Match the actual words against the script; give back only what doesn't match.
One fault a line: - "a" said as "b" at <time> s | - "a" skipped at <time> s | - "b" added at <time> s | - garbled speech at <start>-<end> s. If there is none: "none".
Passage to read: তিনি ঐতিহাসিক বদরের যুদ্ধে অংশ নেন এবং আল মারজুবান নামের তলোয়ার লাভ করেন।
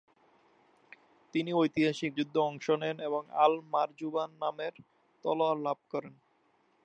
- "বদরের" skipped at 2.1 s